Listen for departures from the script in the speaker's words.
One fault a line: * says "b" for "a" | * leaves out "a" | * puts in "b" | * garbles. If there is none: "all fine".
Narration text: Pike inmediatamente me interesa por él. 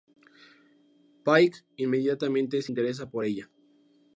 * says "se" for "me"
* says "ella" for "él"